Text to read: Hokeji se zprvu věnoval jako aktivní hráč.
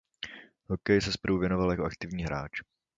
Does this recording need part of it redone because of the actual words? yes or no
no